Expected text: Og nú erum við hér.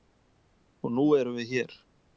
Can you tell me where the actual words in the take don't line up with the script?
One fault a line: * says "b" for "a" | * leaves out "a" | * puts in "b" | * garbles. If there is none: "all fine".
all fine